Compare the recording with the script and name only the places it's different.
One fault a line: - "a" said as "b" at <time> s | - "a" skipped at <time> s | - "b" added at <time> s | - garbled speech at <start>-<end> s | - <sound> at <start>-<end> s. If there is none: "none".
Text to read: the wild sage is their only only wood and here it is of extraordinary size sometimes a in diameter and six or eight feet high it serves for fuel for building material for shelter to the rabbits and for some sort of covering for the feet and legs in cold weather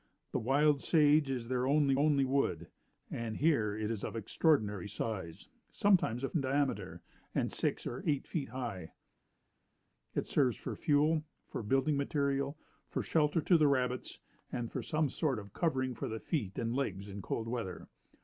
none